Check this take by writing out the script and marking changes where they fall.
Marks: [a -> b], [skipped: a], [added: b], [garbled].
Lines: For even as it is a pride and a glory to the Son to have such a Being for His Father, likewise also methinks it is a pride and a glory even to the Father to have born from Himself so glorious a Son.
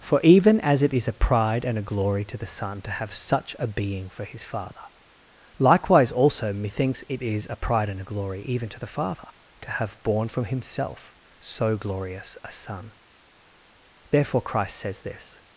For even as it is a pride and a glory to the Son to have such a Being for His Father, likewise also methinks it is a pride and a glory even to the Father to have born from Himself so glorious a Son. [added: Therefore Christ says this]